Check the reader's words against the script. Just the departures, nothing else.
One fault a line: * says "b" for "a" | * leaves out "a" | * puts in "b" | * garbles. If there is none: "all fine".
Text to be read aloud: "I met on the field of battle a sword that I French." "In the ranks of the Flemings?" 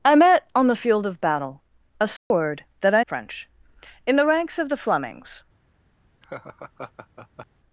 all fine